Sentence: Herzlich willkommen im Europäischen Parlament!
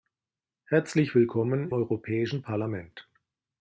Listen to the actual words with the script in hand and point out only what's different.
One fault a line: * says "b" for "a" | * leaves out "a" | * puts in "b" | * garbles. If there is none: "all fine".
* leaves out "im"